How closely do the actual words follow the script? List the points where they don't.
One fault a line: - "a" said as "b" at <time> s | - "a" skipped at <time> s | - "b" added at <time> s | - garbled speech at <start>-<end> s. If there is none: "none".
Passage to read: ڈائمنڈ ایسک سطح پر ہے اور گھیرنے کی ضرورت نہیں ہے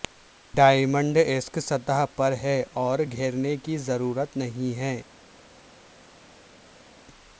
none